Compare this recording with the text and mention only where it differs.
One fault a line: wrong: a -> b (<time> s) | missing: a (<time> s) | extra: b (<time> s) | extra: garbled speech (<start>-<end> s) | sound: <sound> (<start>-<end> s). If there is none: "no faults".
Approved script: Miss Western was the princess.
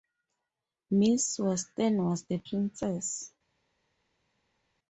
no faults